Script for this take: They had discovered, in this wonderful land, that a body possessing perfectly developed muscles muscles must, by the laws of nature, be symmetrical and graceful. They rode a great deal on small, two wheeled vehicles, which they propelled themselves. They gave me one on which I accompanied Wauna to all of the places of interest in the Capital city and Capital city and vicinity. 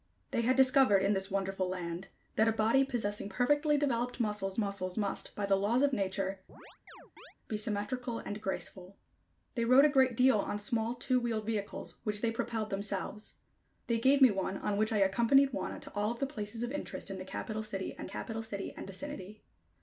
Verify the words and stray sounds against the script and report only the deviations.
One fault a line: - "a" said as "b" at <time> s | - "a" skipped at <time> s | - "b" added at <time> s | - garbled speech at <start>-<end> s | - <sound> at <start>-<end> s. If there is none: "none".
- chirp at 6.5-7.3 s